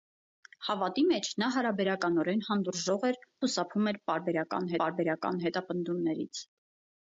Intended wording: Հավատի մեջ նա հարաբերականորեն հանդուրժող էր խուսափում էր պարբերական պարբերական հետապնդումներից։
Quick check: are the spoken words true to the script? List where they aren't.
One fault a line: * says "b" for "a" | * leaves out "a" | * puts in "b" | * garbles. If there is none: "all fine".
all fine